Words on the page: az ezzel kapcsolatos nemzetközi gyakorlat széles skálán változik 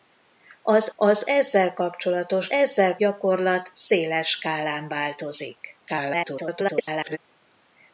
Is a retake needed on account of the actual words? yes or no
yes